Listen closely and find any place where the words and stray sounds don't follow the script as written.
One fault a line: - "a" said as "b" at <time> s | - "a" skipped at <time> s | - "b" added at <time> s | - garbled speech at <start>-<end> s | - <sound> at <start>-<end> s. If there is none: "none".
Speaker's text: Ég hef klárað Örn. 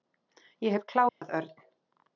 - dropout at 1.1-1.2 s